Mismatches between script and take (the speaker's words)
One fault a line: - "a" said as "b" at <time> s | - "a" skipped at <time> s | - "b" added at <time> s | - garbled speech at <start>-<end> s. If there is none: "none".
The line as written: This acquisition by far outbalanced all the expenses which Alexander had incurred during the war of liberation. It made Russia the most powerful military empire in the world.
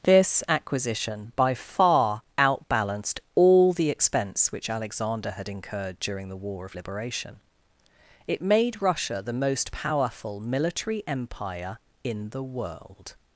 - "expenses" said as "expense" at 3.9 s